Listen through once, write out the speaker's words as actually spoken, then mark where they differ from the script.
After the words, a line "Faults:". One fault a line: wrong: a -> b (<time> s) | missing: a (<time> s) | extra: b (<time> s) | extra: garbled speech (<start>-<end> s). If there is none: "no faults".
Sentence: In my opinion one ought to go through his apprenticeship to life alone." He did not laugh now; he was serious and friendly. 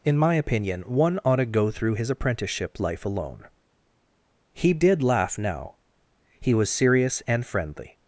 In my opinion one ought to go through his apprenticeship life alone." He did laugh now; he was serious and friendly.
Faults:
missing: to (2.8 s)
missing: not (5.0 s)